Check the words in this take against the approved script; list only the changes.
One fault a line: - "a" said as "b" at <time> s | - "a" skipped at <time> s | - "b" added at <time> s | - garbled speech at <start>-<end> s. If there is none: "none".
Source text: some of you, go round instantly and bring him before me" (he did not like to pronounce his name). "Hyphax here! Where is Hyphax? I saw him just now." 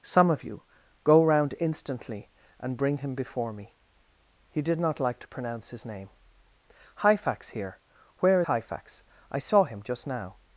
- "is" skipped at 8.4 s